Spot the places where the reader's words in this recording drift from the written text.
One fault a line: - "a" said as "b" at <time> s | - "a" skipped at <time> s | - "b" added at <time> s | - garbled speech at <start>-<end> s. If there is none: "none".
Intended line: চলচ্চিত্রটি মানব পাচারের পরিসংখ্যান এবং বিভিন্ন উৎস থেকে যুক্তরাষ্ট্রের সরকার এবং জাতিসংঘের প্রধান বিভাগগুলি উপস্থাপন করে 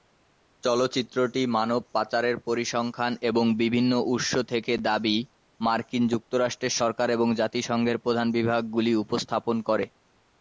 - "দাবি মার্কিন" added at 4.9 s